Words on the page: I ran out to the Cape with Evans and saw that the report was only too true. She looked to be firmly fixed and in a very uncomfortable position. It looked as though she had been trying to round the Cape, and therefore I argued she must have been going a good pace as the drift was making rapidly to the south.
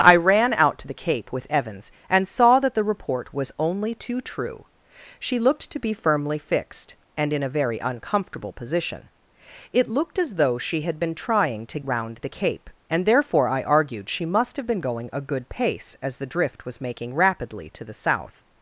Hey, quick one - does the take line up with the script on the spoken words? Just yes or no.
yes